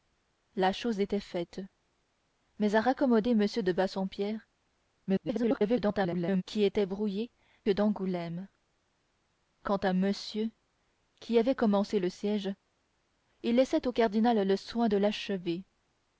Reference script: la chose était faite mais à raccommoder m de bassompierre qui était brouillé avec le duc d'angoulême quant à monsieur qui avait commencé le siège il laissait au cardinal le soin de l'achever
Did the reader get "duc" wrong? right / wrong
wrong